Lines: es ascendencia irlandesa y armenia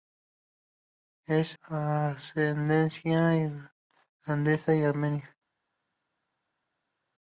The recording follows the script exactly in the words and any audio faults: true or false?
true